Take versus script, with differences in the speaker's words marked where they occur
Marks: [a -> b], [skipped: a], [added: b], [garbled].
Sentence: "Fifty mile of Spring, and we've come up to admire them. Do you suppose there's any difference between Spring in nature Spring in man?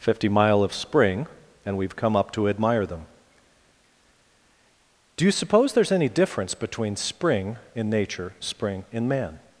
"Fifty mile of Spring, and we've come up to admire them. Do you suppose there's any difference between Spring in nature Spring in man?